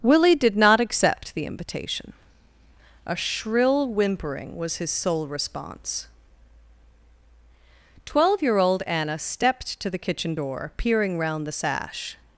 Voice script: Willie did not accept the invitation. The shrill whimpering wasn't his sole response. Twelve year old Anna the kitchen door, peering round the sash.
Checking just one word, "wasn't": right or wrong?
wrong